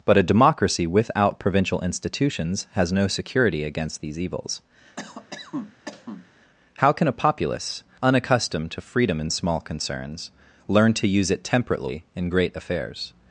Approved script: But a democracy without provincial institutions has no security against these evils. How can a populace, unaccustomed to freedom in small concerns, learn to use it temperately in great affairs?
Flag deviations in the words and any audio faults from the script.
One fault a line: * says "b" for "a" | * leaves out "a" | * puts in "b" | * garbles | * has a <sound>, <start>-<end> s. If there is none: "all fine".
* has a cough, 5.0-6.3 s